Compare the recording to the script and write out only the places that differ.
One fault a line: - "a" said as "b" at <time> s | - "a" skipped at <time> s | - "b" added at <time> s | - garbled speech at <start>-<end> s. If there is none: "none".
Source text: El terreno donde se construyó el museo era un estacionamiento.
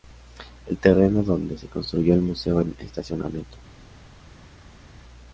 - "era" skipped at 2.6 s